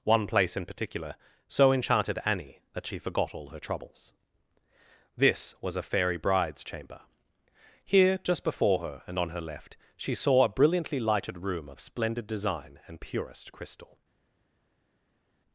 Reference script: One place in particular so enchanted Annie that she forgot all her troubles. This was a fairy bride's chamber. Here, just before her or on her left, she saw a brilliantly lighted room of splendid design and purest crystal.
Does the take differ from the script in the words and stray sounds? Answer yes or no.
yes